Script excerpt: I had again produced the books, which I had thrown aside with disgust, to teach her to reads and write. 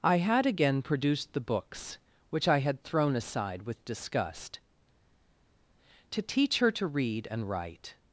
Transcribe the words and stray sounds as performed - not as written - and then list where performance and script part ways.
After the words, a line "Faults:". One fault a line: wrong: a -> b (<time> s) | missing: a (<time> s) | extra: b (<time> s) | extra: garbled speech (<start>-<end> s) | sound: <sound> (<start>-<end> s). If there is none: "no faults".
I had again produced the books, which I had thrown aside with disgust, to teach her to read and write.
Faults:
wrong: reads -> read (6.9 s)